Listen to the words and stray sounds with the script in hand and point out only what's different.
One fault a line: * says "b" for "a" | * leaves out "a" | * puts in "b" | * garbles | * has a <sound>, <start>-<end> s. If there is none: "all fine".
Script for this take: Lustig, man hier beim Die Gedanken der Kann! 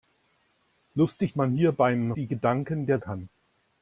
all fine